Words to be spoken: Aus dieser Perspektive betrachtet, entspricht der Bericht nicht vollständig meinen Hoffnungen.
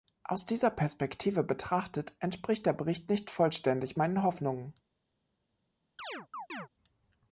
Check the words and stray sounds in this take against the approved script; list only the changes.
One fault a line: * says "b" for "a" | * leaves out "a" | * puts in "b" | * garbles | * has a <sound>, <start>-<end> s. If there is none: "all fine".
* has a chirp, 6.0-6.7 s